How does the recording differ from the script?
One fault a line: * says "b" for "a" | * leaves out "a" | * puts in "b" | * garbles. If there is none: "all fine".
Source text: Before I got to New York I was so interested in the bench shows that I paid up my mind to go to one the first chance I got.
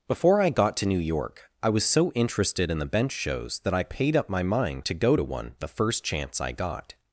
all fine